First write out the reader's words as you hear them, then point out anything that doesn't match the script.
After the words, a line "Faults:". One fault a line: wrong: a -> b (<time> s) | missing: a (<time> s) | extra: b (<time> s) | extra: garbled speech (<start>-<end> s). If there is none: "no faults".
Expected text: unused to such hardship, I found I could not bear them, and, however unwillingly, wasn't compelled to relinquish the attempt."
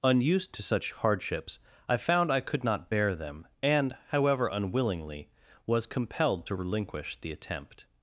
unused to such hardships, I found I could not bear them, and, however unwillingly, was compelled to relinquish the attempt."
Faults:
wrong: hardship -> hardships (0.9 s)
wrong: wasn't -> was (5.7 s)